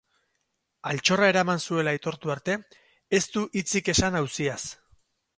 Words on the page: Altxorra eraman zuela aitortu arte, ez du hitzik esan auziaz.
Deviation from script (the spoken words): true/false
false